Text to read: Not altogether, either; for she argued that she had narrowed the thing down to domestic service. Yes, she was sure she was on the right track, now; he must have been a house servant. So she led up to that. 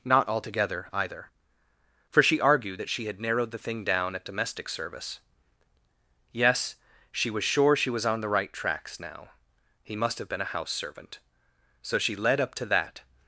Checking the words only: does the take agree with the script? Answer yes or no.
no